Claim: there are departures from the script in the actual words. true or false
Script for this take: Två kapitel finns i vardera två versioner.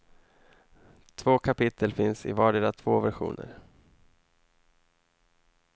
false